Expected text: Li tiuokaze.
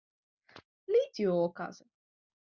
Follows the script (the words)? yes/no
yes